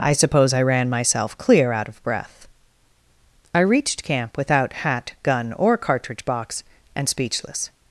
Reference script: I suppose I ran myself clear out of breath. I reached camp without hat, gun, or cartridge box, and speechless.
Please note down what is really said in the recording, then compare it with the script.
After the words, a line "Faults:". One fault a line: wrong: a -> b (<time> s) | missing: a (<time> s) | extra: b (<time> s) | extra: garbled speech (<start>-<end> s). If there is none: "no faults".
I suppose I ran myself clear out of breath. I reached camp without hat, gun, or cartridge box, and speechless.
Faults:
no faults